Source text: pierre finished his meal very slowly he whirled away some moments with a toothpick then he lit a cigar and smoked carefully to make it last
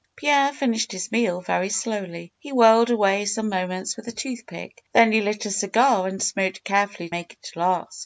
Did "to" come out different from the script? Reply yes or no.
yes